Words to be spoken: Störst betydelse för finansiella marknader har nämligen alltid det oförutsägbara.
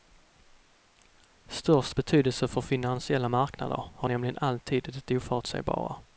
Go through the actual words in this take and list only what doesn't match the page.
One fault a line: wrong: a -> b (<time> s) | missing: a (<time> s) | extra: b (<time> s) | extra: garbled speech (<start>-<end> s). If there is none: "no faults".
no faults